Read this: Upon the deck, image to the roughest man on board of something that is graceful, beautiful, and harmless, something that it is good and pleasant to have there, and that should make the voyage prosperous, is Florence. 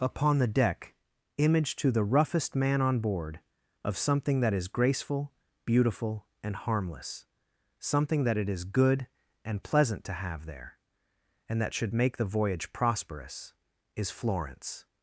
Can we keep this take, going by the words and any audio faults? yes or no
yes